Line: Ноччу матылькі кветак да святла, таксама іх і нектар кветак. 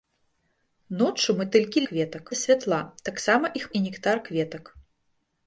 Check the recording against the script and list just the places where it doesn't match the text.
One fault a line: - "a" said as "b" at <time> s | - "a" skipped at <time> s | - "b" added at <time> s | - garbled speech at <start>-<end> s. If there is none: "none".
none